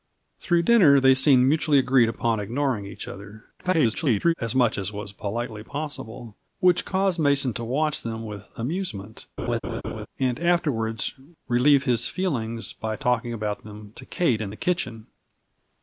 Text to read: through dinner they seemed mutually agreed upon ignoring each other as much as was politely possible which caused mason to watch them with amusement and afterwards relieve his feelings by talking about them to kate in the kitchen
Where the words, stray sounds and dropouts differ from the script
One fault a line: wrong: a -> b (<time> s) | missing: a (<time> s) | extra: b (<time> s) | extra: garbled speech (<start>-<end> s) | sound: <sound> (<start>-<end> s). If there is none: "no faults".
extra: garbled speech (3.6-4.3 s)
sound: laugh (9.4-10.1 s)